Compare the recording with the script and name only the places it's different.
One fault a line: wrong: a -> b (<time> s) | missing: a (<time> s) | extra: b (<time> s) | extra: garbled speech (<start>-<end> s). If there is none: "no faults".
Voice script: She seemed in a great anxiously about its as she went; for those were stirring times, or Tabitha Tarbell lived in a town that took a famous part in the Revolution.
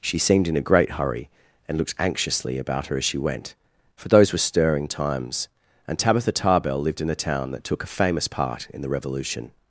extra: hurry and looked (0.9 s)
wrong: its -> her (2.9 s)
wrong: or -> and (5.9 s)